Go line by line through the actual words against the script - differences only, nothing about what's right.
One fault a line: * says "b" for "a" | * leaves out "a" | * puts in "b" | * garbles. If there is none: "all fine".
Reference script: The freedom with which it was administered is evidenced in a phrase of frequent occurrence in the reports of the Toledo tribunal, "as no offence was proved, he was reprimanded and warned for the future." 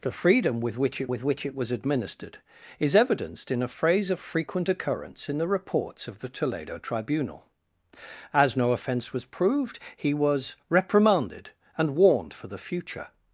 * puts in "with which it"